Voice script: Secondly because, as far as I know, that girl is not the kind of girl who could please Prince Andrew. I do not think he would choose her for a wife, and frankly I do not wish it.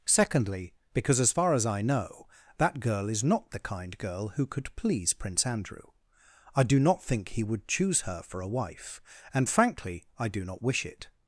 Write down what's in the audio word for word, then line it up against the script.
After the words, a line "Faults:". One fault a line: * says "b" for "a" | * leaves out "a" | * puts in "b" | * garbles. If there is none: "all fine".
Secondly because, as far as I know, that girl is not the kind girl who could please Prince Andrew. I do not think he would choose her for a wife, and frankly I do not wish it.
Faults:
* leaves out "of"